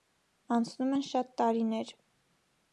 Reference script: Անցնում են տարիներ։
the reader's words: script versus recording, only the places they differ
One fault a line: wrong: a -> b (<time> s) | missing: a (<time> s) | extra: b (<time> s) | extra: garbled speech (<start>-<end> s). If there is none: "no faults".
extra: շատ (1.1 s)